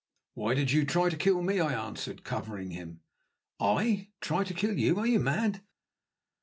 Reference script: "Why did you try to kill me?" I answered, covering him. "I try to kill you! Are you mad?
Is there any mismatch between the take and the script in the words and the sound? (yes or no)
no